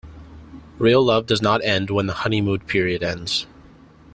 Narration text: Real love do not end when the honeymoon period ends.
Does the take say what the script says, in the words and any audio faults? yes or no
no